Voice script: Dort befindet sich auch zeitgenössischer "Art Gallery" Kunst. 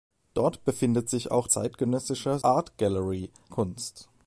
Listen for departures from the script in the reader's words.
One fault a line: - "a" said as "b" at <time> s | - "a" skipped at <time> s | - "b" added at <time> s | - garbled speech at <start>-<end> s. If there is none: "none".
none